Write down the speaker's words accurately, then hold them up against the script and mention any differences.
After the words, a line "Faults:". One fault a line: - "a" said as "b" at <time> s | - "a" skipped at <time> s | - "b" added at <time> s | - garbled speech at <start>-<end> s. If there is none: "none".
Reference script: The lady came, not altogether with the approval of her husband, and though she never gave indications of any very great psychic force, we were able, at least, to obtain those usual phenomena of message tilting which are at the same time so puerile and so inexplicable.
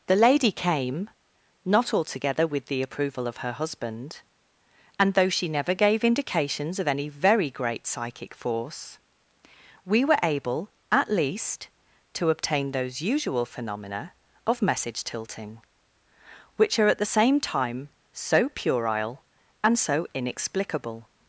The lady came, not altogether with the approval of her husband, and though she never gave indications of any very great psychic force, we were able, at least, to obtain those usual phenomena of message tilting which are at the same time so puerile and so inexplicable.
Faults:
none